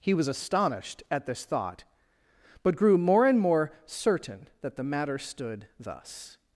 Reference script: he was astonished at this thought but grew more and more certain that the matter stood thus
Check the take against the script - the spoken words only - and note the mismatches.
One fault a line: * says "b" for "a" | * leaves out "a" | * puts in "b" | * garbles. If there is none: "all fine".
all fine